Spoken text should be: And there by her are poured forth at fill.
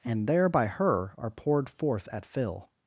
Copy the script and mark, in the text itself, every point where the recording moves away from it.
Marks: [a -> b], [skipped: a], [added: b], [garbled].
And there by her are poured forth at fill.